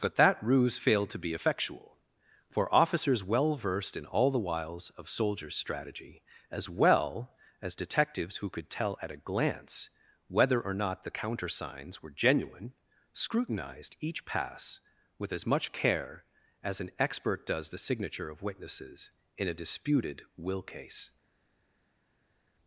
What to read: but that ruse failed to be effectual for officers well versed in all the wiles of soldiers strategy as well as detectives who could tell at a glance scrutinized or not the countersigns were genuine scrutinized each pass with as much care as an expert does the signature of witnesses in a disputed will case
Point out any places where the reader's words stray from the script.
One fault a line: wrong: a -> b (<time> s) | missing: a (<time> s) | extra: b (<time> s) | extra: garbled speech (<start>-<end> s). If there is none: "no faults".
wrong: scrutinized -> whether (10.3 s)